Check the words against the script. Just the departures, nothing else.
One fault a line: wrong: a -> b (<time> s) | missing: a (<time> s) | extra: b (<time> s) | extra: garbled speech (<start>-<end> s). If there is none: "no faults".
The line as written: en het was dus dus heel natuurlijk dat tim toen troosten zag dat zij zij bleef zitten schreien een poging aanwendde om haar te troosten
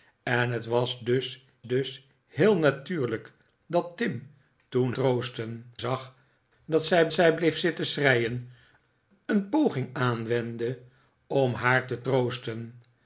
no faults